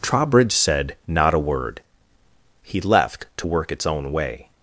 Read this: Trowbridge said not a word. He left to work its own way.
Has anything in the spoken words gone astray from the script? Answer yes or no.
no